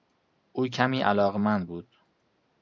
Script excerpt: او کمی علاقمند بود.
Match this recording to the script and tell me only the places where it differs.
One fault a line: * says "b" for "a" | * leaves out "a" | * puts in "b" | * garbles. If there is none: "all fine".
all fine